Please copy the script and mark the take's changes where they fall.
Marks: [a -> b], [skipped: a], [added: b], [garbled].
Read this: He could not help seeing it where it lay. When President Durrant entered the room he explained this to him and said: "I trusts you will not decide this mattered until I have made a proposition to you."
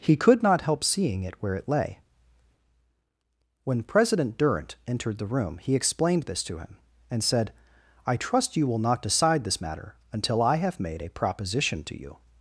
He could not help seeing it where it lay. When President Durrant entered the room he explained this to him and said: "I [trusts -> trust] you will not decide this [mattered -> matter] until I have made a proposition to you."